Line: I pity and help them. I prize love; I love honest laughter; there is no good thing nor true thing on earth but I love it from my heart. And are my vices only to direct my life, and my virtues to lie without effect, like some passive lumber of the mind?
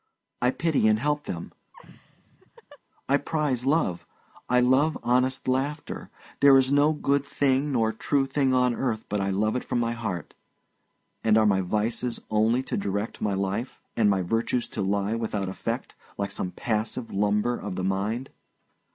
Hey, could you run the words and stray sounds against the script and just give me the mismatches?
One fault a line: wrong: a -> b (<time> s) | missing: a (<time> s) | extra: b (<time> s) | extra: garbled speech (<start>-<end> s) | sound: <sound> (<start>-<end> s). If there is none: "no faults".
sound: laugh (1.7-2.8 s)